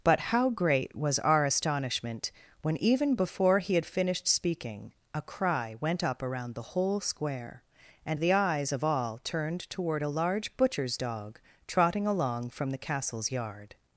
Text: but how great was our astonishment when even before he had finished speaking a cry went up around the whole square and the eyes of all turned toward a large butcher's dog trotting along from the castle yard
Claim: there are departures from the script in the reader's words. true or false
true